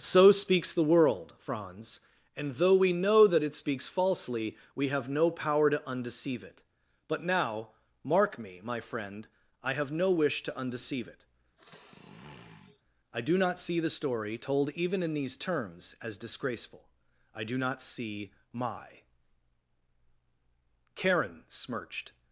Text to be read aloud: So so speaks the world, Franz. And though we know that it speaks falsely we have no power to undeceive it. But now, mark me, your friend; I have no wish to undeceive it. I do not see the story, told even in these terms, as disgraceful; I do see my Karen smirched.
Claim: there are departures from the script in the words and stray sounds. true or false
true